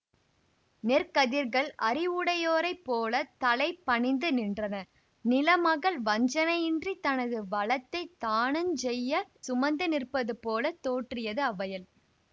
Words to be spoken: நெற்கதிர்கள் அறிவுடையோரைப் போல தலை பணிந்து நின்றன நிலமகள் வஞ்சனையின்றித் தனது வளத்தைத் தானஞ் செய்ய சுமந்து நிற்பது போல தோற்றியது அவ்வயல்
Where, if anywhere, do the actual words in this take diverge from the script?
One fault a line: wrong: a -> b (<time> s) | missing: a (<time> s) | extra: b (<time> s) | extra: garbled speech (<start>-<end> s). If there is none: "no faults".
no faults